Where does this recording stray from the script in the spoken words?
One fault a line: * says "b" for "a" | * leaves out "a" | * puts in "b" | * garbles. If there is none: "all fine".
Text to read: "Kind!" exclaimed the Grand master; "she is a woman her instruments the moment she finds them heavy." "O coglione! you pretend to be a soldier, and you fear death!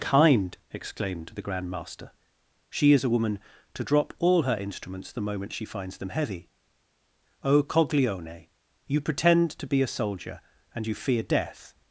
* puts in "to drop all"